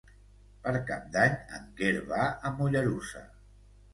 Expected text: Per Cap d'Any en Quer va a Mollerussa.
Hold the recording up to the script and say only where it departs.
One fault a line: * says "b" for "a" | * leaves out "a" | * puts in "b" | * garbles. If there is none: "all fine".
all fine